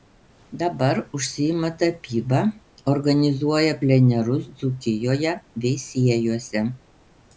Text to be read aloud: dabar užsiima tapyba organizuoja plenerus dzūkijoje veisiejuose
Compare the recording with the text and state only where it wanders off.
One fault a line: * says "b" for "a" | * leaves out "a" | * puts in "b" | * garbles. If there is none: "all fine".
all fine